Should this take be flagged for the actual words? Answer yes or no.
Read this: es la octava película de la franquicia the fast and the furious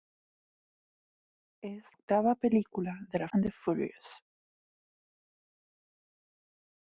yes